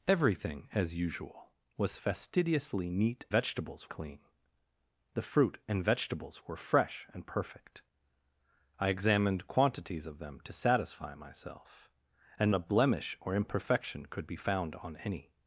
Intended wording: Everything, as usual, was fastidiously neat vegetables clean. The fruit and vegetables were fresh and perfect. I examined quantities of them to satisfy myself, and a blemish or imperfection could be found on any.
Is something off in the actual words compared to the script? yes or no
no